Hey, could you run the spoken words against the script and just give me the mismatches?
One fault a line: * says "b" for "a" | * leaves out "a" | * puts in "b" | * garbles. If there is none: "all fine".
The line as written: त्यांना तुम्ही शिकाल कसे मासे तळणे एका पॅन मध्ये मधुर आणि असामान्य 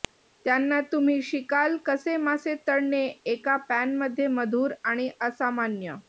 all fine